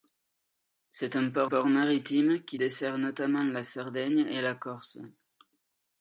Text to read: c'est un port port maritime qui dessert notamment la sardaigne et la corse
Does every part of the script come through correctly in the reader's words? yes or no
yes